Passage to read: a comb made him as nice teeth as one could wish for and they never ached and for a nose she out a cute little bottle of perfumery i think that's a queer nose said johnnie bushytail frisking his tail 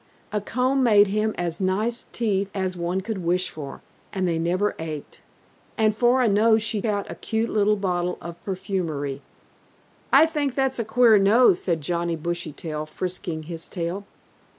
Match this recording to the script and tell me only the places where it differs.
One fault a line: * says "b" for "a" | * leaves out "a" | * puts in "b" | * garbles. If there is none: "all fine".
all fine